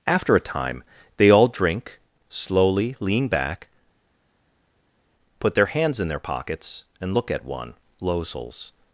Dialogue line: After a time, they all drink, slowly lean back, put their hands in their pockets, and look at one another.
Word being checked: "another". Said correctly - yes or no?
no